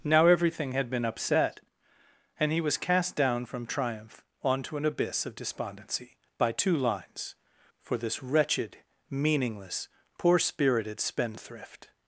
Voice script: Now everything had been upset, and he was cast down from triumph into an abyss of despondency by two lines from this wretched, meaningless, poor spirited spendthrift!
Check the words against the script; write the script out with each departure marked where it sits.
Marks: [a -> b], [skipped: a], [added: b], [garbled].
Now everything had been upset, and he was cast down from triumph [into -> onto] an abyss of despondency by two lines [from -> for] this wretched, meaningless, poor spirited spendthrift!